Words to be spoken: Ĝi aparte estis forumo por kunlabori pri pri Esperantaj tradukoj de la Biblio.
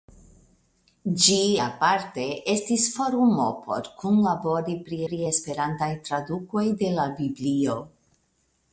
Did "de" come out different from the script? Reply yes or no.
no